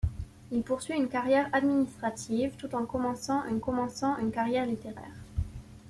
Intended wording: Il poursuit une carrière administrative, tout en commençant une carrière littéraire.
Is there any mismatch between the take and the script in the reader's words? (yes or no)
yes